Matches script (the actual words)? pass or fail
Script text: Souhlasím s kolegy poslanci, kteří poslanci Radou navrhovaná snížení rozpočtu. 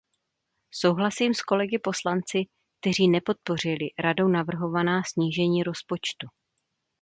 fail